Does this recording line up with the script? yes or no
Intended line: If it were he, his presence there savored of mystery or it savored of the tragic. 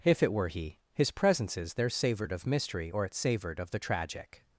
no